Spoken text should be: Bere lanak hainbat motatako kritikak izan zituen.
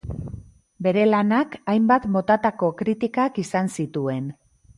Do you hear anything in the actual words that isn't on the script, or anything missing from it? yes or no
no